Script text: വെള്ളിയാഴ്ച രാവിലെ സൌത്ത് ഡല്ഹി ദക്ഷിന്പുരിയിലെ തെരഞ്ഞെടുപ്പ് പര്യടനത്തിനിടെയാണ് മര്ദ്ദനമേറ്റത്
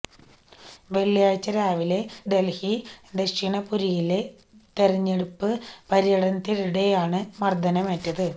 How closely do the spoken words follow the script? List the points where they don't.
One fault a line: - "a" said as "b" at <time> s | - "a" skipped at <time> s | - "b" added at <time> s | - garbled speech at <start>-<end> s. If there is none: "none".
- "സൌത്ത്" skipped at 2.0 s